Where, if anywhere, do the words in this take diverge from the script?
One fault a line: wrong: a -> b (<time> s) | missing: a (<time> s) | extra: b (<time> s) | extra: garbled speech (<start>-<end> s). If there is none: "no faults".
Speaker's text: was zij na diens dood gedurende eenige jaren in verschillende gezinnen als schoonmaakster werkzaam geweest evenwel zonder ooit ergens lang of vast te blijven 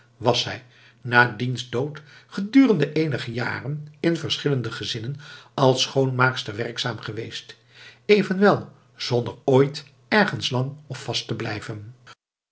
no faults